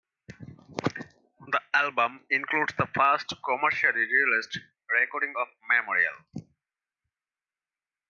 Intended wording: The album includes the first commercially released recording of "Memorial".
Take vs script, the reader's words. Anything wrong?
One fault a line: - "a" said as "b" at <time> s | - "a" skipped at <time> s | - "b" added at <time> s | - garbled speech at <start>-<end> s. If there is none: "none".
none